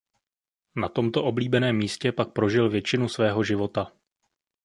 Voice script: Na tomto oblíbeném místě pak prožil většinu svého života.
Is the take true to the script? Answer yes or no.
yes